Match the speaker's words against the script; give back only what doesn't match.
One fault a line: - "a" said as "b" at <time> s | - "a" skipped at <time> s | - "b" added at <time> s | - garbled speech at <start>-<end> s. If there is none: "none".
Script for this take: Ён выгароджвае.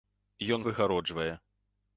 none